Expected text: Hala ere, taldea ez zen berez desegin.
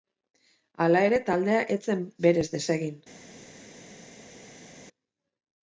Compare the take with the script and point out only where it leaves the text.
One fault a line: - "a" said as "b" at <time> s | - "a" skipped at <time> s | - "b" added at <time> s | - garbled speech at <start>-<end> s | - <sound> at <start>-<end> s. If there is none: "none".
none